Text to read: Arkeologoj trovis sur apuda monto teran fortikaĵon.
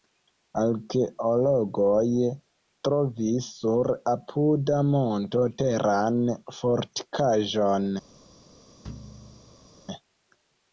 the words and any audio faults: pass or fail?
fail